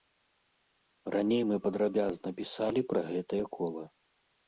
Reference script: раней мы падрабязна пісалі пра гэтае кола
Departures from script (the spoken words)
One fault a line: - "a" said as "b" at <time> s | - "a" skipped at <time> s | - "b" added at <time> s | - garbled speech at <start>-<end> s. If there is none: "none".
none